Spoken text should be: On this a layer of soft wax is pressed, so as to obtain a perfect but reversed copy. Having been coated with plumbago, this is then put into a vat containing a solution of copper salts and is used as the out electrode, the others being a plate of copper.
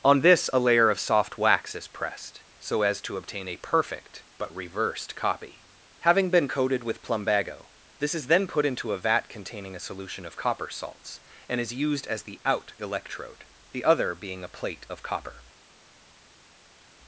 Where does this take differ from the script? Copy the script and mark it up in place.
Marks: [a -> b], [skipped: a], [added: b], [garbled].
On this a layer of soft wax is pressed, so as to obtain a perfect but reversed copy. Having been coated with plumbago, this is then put into a vat containing a solution of copper salts and is used as the out electrode, the [others -> other] being a plate of copper.